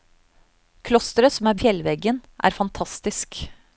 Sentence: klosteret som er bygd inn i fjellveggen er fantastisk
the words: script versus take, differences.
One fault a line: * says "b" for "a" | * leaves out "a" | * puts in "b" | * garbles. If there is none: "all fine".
* leaves out "bygd inn"